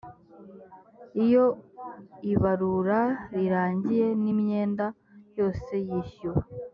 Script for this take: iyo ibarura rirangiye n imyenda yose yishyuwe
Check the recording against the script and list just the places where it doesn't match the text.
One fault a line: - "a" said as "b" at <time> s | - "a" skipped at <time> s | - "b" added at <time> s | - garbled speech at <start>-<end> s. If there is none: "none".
none